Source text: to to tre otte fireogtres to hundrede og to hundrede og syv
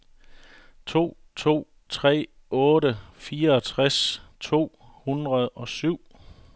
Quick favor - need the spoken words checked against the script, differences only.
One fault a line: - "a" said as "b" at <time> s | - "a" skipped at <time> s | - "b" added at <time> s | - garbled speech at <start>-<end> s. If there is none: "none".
- "to hundrede og" skipped at 5.7 s